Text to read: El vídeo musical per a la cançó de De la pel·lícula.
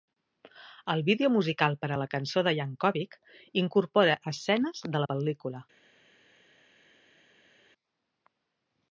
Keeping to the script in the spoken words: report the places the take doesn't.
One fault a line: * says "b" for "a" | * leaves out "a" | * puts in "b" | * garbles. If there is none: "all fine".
* puts in "Yankovic incorpora escenes"